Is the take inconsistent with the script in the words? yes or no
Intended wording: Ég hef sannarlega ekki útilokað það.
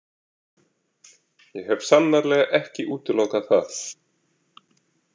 no